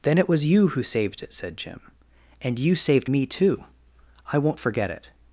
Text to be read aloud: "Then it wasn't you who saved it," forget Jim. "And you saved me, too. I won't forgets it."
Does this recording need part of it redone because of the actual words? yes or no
yes